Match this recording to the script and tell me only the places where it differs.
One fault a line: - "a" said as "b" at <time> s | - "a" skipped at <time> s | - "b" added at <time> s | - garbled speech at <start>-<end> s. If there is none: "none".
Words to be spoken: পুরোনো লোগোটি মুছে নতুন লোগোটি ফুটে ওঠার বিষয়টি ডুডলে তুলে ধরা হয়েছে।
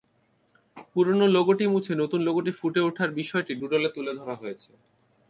none